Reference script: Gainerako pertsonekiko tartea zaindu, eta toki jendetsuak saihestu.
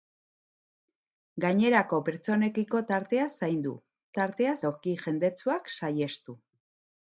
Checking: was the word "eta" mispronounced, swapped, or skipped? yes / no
yes